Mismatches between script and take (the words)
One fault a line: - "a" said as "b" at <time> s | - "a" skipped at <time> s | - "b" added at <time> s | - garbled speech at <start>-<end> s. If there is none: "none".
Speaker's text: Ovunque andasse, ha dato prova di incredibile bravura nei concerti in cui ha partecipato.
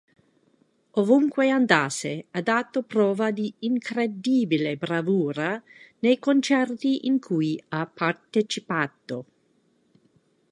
none